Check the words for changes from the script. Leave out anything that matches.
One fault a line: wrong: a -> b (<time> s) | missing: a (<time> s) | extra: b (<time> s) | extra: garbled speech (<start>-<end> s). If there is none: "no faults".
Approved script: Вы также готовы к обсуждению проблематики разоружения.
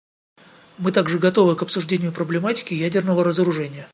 wrong: Вы -> Мы (0.8 s)
extra: ядерного (2.7 s)